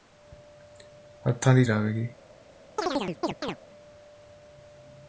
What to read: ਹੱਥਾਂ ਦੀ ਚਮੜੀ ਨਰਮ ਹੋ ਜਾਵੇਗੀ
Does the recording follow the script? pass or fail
fail